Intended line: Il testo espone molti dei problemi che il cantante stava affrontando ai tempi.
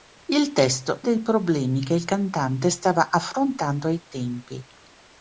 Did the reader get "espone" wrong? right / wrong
wrong